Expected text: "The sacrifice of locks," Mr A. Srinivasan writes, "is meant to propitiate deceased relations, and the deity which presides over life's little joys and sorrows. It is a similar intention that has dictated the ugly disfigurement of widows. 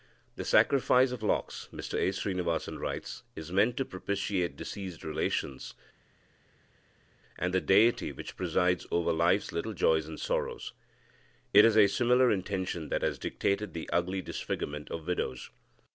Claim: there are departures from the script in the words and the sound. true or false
false